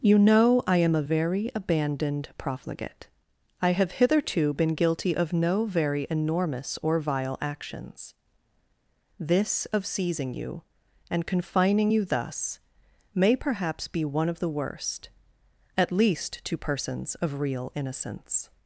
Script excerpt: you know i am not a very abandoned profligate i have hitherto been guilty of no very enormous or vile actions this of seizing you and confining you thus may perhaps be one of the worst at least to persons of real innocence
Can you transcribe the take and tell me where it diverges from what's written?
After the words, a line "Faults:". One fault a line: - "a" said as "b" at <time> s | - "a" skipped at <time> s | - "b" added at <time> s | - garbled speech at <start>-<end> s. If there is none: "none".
you know i am a very abandoned profligate i have hitherto been guilty of no very enormous or vile actions this of seizing you and confining you thus may perhaps be one of the worst at least to persons of real innocence
Faults:
- "not" skipped at 0.9 s